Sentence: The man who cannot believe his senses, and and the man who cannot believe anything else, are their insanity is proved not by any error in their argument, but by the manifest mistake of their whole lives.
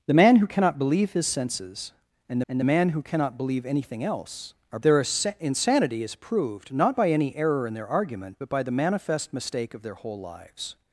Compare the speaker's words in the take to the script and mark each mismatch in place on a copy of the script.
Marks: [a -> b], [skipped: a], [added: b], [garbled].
The man who cannot believe his senses, and and the man who cannot believe anything else, are their insanity is proved not by any error in their argument, but by the manifest mistake of their whole lives.